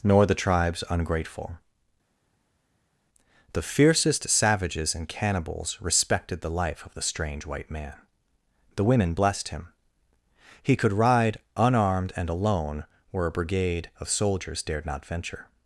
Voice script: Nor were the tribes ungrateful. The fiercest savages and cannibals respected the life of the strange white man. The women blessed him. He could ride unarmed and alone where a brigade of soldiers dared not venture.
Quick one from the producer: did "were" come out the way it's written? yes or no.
no